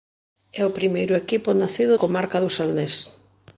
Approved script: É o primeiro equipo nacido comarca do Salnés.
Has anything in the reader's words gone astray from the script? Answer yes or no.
no